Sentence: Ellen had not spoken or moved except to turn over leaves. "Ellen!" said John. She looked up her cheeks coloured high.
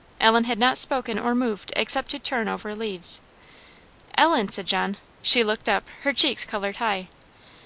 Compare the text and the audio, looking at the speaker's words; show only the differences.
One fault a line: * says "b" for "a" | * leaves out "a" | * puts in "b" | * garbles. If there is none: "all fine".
all fine